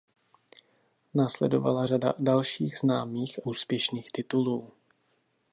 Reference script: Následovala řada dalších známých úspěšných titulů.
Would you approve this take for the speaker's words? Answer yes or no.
yes